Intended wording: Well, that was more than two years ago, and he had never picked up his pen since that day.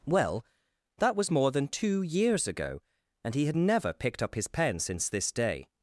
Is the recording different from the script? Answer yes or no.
yes